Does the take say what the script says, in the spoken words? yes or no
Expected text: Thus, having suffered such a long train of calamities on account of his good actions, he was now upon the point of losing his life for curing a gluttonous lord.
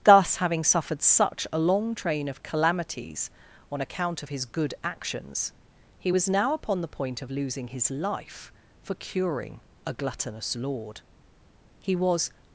no